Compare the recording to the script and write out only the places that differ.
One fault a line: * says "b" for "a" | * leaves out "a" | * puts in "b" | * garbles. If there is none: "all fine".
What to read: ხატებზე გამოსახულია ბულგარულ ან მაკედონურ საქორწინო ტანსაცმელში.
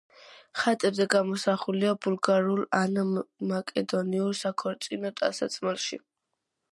all fine